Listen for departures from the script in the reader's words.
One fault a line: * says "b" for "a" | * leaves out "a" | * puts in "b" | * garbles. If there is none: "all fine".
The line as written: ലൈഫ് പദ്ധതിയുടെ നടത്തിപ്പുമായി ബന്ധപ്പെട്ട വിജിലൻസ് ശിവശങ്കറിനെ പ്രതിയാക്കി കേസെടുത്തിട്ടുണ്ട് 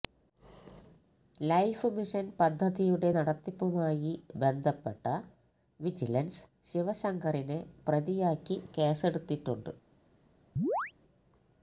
* puts in "മിഷൻ"